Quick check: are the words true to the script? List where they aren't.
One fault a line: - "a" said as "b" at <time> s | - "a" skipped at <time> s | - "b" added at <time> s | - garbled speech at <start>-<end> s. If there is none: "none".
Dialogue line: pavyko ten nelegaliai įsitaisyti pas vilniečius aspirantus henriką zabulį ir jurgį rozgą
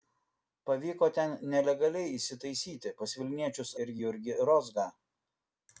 - "aspirantus henriką zabulį" skipped at 3.8 s